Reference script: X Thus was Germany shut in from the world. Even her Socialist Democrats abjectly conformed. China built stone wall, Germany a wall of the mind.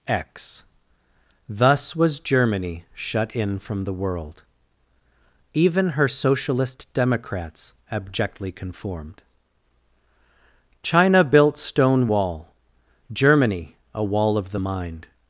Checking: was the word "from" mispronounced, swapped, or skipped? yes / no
no